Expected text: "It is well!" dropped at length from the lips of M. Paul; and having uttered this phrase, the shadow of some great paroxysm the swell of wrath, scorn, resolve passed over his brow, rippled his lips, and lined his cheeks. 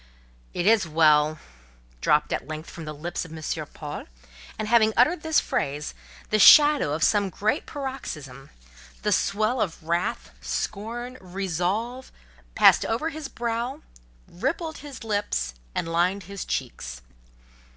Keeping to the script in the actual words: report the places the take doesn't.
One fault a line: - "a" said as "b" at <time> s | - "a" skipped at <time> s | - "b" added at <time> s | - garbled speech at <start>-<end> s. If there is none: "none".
none